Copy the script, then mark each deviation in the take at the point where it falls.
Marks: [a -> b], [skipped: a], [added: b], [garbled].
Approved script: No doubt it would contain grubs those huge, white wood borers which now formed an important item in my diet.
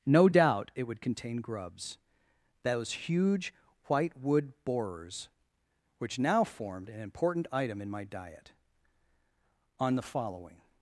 No doubt it would contain grubs those huge, white wood borers which now formed an important item in my diet. [added: On the following]